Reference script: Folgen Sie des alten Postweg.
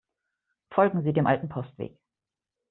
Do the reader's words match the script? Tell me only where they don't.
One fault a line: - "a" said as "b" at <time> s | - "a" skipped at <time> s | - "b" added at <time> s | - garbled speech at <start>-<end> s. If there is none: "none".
- "des" said as "dem" at 1.1 s